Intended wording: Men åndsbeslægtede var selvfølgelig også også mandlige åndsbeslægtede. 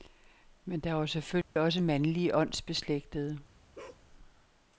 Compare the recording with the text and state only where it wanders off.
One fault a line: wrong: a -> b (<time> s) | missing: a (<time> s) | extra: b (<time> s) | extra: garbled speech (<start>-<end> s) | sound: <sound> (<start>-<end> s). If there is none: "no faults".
wrong: åndsbeslægtede -> der (0.8 s)
sound: dropout (1.4-1.6 s)
missing: også (1.8 s)
sound: bark (3.7-4.0 s)